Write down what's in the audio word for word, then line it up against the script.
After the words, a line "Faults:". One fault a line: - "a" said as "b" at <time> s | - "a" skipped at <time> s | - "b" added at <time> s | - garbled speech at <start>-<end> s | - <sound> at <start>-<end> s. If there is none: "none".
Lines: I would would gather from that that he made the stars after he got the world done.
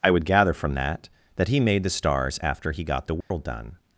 I would gather from that that he made the stars after he got the world done.
Faults:
- "would" skipped at 0.2 s
- dropout at 3.2-3.3 s